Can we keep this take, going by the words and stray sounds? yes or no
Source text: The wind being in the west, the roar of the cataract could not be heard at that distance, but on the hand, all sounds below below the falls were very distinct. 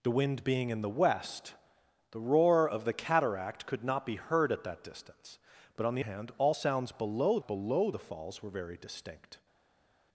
yes